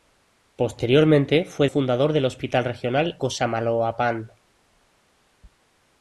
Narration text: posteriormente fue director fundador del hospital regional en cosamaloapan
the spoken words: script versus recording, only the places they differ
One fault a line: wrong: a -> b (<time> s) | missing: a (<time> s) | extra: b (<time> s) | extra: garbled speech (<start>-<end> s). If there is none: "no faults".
missing: director (1.7 s)
missing: en (3.2 s)